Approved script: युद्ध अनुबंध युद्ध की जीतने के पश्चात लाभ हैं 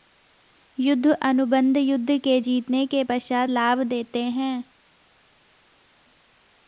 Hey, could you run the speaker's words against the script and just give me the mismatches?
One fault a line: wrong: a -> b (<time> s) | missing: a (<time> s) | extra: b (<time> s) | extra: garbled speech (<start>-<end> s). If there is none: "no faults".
wrong: की -> के (2.2 s)
extra: देते (3.8 s)